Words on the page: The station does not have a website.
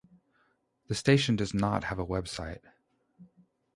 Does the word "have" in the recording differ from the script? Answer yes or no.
no